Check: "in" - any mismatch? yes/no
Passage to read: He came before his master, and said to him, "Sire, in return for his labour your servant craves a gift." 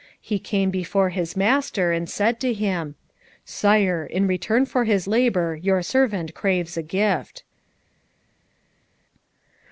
no